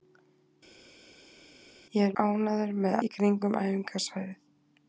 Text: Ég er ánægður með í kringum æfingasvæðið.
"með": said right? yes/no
yes